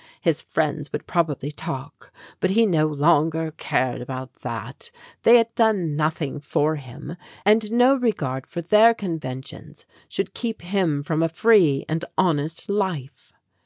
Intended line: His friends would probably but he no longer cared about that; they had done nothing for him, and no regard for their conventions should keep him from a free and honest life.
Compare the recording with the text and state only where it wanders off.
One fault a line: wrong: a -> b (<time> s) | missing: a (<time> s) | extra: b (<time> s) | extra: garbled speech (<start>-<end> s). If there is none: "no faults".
extra: talk (1.5 s)